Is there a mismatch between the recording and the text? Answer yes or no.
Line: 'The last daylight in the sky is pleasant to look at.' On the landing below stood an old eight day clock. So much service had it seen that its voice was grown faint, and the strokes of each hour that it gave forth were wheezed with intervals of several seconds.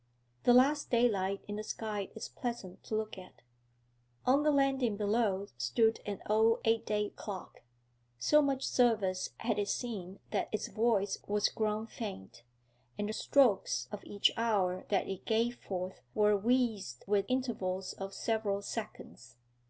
no